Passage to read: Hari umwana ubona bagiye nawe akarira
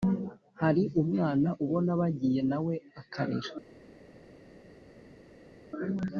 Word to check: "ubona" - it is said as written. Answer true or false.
true